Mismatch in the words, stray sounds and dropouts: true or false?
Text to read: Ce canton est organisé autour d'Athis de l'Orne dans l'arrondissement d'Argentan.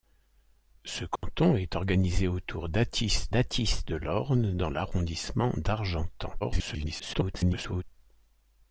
true